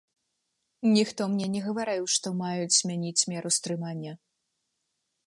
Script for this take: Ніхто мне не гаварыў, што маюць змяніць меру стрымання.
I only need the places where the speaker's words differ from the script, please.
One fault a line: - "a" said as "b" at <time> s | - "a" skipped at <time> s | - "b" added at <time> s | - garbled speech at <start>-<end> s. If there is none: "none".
none